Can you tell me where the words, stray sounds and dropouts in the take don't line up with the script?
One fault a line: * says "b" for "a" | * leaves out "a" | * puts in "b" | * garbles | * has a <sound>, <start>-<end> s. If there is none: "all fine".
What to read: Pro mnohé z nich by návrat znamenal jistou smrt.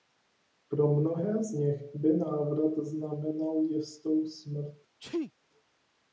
* has a sneeze, 5.0-5.3 s